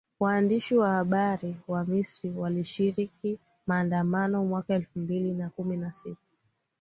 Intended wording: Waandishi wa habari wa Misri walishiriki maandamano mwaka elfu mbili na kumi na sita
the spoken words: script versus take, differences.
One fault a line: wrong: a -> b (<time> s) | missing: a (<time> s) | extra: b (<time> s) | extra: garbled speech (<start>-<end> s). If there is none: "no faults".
no faults